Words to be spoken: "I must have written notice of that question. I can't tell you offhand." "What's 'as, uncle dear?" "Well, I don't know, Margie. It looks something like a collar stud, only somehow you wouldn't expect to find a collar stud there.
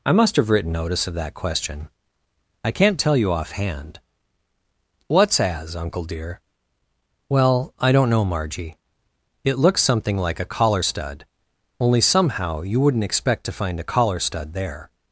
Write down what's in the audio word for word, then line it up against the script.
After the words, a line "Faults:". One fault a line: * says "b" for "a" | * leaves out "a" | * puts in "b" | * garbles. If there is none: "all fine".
"I must have written notice of that question. I can't tell you offhand." "What's 'as, uncle dear?" "Well, I don't know, Margie. It looks something like a collar stud, only somehow you wouldn't expect to find a collar stud there.
Faults:
all fine